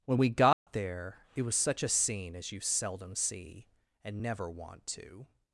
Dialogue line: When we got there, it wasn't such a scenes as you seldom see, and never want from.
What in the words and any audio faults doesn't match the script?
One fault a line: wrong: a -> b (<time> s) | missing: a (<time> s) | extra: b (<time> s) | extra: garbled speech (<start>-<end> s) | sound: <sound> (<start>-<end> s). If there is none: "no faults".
sound: dropout (0.5-0.7 s)
wrong: wasn't -> was (1.4 s)
wrong: scenes -> scene (1.9 s)
wrong: from -> to (4.9 s)